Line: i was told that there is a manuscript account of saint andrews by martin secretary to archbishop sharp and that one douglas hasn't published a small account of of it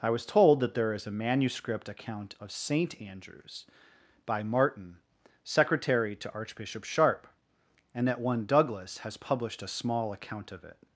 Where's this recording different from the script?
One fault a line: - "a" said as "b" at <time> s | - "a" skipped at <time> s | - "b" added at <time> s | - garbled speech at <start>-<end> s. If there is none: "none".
- "hasn't" said as "has" at 9.0 s
- "of" skipped at 10.6 s